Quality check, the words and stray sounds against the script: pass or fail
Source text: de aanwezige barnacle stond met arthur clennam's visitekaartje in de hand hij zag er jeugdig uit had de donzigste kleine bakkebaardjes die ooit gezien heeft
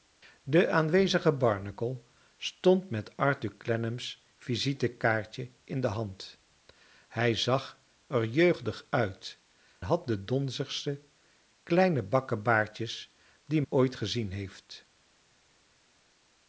pass